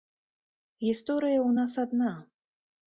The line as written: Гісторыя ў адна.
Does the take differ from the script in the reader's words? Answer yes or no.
yes